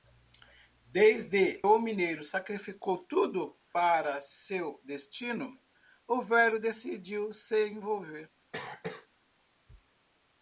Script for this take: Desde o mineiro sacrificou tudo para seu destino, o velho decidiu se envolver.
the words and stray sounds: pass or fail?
fail